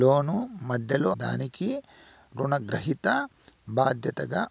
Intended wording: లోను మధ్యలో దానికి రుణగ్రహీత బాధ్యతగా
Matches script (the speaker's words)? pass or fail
pass